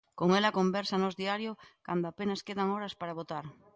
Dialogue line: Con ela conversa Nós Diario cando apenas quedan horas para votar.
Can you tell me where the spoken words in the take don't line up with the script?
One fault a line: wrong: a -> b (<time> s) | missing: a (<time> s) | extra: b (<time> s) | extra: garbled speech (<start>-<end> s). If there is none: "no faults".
no faults